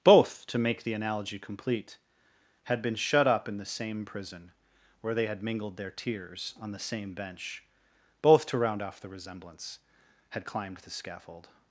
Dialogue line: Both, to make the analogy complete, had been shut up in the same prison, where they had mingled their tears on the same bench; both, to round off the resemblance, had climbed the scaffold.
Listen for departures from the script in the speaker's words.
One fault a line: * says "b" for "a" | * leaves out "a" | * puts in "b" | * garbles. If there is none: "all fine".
all fine